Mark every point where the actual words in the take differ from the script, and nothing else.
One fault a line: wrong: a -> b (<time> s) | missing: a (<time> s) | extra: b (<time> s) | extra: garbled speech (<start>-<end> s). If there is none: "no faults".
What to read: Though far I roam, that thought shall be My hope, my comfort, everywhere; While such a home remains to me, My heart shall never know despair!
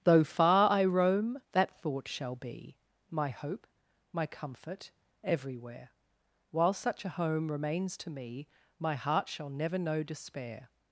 no faults